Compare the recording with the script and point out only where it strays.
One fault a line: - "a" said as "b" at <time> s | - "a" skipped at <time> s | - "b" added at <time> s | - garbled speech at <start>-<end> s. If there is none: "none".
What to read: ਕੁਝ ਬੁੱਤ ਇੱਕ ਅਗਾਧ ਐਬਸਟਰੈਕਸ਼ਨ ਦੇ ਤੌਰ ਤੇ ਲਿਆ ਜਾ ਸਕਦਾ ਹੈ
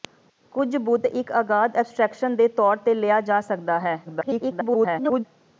- garbled speech at 4.0-5.2 s